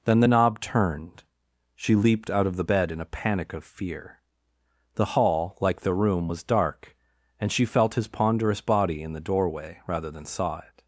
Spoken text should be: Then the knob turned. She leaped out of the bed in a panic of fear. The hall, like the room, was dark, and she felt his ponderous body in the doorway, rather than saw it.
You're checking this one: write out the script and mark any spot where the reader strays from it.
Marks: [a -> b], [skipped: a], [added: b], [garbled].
Then the knob turned. She leaped out of the bed in a panic of fear. The hall, like the room, was dark, and she felt his ponderous body in the doorway, rather than saw it.